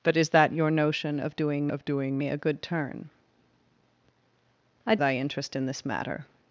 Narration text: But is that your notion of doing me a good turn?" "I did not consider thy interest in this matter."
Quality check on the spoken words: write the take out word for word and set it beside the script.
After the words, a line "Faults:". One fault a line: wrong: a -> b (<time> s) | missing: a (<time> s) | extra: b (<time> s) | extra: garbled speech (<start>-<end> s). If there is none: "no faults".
But is that your notion of doing of doing me a good turn?" "I thy interest in this matter."
Faults:
extra: of doing (1.7 s)
missing: did not consider (5.0 s)